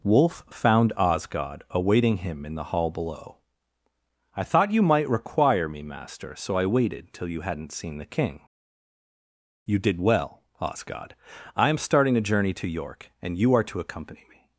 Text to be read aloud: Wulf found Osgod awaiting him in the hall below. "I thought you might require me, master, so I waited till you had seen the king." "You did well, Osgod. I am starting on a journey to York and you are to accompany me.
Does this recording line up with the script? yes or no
no